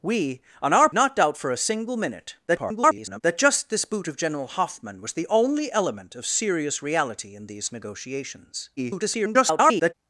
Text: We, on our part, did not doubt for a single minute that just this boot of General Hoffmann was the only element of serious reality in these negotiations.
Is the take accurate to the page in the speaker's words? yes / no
no